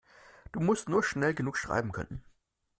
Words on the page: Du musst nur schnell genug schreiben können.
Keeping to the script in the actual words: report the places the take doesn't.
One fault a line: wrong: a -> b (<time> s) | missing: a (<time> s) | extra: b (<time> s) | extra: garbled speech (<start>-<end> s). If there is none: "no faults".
no faults